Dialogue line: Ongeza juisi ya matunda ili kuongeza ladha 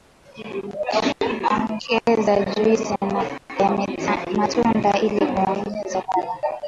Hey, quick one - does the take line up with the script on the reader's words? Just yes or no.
yes